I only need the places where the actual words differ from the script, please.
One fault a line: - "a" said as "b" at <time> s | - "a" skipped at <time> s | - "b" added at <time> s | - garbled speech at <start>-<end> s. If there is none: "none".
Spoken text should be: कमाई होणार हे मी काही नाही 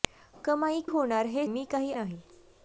none